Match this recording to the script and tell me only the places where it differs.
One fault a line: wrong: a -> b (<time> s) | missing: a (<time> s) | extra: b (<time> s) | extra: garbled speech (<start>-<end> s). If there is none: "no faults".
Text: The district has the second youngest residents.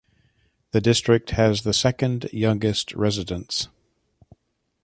no faults